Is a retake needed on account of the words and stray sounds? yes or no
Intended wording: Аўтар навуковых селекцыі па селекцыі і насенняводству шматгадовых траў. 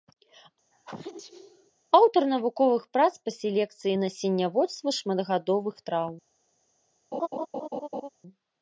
yes